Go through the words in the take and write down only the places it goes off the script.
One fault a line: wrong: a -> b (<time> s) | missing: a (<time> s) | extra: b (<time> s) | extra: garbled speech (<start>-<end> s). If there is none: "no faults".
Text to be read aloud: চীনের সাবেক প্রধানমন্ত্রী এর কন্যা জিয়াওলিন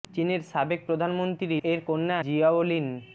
no faults